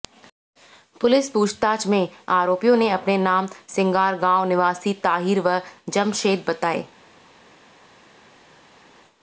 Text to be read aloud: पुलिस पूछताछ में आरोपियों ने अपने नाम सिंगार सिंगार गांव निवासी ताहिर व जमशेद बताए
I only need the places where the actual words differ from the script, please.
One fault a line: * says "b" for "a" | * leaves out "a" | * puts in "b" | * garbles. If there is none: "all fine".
* leaves out "सिंगार"